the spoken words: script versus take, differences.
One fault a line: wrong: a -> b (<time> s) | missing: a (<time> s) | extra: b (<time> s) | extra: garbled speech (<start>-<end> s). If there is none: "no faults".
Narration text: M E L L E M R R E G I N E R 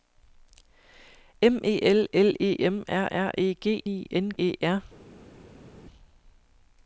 no faults